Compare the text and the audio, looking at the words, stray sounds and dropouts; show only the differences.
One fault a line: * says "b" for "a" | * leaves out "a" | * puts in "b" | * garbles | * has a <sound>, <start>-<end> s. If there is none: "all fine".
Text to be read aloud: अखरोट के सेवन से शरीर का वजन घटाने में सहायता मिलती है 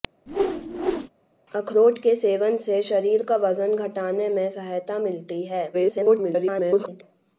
* has a whoosh, 0.3-1.1 s
* garbles